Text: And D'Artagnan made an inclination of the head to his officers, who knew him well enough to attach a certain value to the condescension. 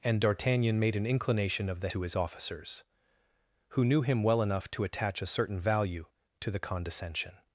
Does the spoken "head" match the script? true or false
false